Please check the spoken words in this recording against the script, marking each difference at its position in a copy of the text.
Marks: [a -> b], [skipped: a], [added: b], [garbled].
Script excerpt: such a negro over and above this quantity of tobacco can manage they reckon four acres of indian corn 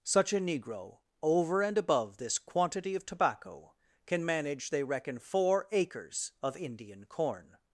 such a negro over and above this quantity of tobacco can manage they reckon four acres of indian corn